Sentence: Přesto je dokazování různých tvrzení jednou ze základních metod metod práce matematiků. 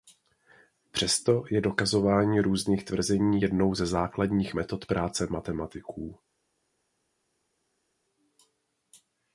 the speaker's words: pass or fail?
fail